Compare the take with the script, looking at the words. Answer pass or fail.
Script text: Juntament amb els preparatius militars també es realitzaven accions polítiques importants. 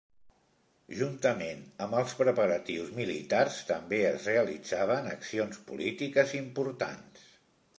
pass